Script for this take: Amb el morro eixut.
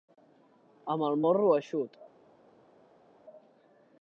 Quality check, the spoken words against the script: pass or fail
pass